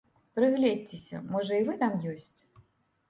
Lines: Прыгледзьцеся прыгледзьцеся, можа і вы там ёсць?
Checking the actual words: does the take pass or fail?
fail